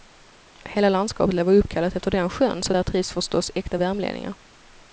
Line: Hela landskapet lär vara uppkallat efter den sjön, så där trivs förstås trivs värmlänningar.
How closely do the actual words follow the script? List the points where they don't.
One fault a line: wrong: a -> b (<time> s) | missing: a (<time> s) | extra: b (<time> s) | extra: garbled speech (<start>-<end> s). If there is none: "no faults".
wrong: trivs -> äkta (3.5 s)